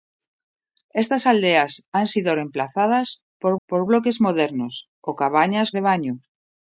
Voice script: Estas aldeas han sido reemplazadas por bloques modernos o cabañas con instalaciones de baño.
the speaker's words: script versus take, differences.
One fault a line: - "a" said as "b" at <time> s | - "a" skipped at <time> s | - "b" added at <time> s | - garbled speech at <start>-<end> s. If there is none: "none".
- "por" added at 3.7 s
- "con instalaciones" skipped at 5.7 s